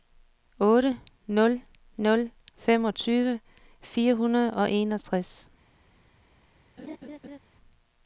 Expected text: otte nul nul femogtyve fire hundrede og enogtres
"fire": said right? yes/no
yes